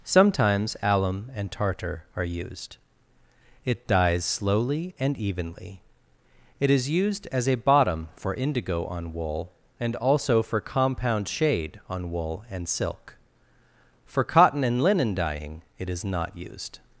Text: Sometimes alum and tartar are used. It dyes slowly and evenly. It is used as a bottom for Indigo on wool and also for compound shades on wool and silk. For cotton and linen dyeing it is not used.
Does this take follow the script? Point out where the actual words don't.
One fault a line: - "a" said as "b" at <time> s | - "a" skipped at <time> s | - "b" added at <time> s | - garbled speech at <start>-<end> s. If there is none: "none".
- "shades" said as "shade" at 11.3 s